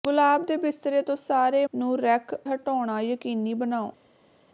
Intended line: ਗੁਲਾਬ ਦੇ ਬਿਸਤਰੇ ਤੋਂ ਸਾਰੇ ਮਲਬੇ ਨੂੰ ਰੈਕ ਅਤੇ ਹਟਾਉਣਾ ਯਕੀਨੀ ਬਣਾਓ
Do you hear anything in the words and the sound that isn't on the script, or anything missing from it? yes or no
yes